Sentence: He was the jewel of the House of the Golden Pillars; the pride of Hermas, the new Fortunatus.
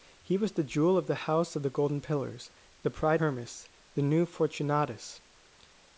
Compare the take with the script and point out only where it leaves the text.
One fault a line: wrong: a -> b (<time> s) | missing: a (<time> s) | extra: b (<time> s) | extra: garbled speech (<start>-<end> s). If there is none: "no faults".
missing: of (3.2 s)